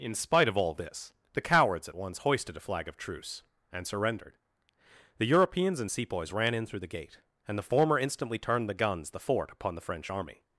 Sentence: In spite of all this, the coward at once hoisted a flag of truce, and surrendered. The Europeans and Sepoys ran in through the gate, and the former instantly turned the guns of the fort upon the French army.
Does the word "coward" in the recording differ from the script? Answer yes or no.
yes